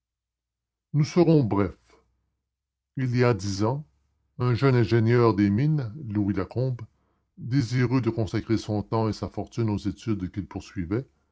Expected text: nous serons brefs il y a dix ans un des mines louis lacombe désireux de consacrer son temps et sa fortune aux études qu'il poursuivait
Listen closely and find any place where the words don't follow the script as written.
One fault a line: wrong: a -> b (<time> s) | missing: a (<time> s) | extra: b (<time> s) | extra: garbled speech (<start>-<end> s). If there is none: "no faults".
extra: jeune ingénieur (4.5 s)